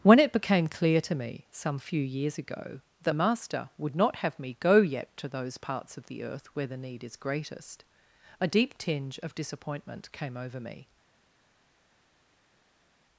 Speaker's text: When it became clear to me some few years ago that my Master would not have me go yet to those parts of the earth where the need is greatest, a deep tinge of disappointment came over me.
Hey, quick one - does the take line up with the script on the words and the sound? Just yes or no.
no